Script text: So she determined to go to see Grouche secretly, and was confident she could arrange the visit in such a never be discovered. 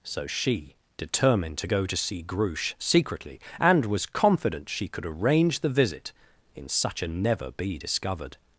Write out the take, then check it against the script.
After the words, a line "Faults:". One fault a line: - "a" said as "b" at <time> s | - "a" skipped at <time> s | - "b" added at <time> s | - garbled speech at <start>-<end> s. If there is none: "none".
So she determined to go to see Grouche secretly, and was confident she could arrange the visit in such a never be discovered.
Faults:
none